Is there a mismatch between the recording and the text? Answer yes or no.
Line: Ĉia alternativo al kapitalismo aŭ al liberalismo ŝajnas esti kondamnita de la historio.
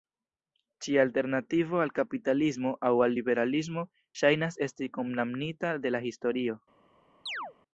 no